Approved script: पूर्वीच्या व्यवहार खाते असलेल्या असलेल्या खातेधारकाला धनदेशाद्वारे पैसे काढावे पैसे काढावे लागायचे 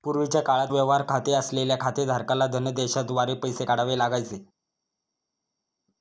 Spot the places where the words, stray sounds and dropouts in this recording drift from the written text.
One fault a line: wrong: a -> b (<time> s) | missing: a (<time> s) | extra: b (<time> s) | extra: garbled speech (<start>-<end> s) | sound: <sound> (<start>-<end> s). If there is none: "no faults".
extra: काळात (0.4 s)
missing: असलेल्या (1.8 s)
missing: पैसे काढावे (4.0 s)